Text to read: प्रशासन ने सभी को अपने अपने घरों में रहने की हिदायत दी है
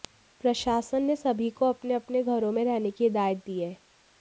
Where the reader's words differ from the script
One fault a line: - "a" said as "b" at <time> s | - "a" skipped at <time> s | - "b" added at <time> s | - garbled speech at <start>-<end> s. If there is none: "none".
none